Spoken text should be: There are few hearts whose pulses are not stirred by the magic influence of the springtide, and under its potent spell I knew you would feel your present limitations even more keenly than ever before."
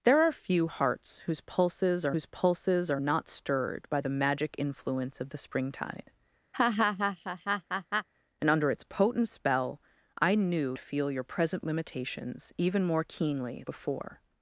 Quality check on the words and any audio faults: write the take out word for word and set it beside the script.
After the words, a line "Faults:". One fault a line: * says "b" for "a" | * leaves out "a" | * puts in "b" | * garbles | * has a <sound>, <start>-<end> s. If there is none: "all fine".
There are few hearts whose pulses are whose pulses are not stirred by the magic influence of the springtide, and under its potent spell I knew feel your present limitations even more keenly before."
Faults:
* puts in "whose pulses are"
* has a laugh, 6.5-8.1 s
* leaves out "you would"
* leaves out "than ever"